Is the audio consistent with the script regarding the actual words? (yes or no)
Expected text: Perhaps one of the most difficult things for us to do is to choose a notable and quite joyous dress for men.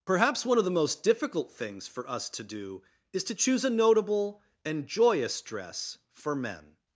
no